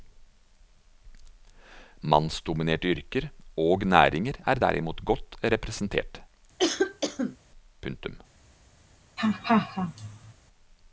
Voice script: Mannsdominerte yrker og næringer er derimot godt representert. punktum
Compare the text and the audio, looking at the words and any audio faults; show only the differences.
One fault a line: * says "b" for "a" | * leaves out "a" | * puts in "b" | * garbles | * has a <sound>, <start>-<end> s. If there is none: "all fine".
* has a cough, 6.6-7.4 s
* has a laugh, 9.2-10.3 s